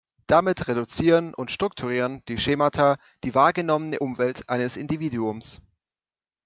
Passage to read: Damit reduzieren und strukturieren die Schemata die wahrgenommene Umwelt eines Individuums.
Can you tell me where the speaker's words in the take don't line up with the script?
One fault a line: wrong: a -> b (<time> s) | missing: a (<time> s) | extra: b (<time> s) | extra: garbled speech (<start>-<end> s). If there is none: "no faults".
no faults